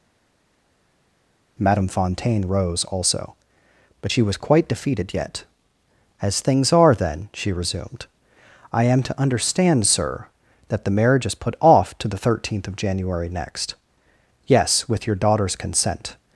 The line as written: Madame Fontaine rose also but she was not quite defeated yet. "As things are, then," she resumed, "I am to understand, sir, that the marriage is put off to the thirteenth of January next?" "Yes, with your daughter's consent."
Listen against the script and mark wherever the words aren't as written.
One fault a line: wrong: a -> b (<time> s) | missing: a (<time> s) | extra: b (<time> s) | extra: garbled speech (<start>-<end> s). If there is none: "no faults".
missing: not (4.4 s)